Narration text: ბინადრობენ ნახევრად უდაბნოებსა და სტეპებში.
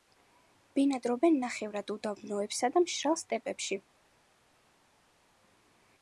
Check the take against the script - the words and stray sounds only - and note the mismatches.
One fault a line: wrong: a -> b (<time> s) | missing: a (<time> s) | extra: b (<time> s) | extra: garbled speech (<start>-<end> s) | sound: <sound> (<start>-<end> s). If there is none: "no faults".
extra: მშრალ (2.8 s)